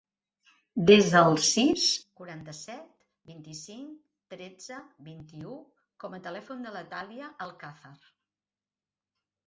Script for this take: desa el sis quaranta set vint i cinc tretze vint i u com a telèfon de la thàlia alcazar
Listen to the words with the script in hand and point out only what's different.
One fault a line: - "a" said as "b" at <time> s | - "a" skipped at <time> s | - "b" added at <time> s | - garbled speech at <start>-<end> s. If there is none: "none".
none